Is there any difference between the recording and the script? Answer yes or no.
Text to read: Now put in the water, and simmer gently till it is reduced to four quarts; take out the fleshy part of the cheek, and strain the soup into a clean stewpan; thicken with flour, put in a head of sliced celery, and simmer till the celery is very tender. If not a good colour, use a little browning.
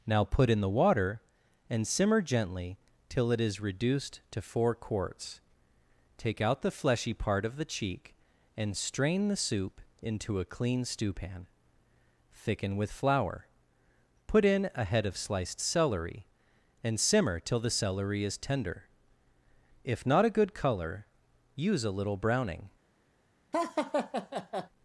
yes